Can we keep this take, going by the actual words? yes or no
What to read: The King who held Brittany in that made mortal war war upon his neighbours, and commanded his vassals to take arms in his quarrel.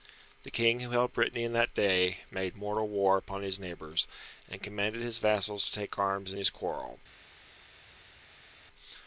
no